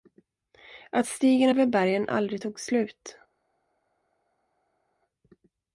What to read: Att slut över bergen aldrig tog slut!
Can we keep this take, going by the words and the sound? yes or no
no